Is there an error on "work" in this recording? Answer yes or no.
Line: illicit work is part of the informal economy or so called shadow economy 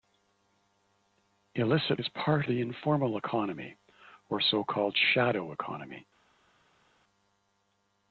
yes